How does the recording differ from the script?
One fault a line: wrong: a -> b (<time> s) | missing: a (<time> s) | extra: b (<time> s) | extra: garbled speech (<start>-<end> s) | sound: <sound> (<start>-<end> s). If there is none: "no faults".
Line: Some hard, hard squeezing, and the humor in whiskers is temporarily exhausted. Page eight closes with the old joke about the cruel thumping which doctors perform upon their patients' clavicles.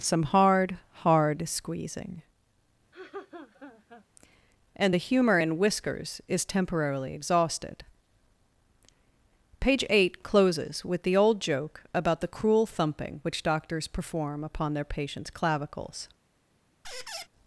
sound: laugh (2.9-4.1 s)
sound: squeak (16.8-17.3 s)